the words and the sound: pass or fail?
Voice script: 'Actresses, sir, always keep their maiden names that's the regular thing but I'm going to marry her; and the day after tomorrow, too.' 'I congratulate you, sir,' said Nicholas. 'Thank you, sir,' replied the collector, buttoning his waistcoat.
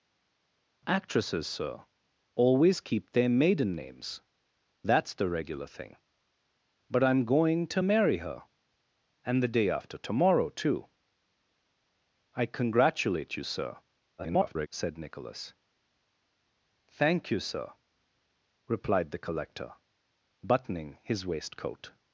fail